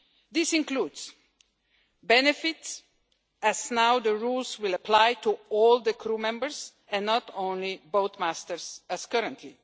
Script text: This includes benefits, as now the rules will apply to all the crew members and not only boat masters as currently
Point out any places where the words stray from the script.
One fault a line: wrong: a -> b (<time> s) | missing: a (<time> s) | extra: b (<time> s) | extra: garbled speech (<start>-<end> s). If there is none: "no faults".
no faults